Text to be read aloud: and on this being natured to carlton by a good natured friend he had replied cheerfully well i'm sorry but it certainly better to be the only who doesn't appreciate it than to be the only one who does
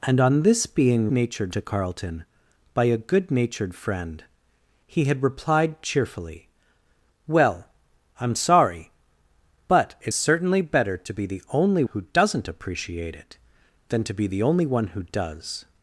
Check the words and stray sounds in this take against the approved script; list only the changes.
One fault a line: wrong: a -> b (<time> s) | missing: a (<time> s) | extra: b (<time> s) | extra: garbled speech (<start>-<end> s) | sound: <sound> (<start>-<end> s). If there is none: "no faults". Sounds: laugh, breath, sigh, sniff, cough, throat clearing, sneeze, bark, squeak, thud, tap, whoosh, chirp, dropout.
no faults